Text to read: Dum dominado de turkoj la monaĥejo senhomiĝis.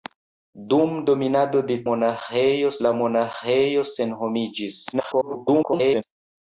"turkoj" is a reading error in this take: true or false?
true